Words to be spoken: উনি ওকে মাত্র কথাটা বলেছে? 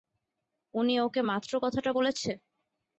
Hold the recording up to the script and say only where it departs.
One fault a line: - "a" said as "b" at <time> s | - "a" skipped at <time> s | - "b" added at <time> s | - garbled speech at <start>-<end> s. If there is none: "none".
none